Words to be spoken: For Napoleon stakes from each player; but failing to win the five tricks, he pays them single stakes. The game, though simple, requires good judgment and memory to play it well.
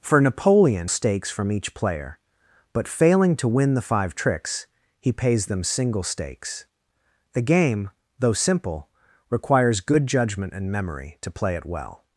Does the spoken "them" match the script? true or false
true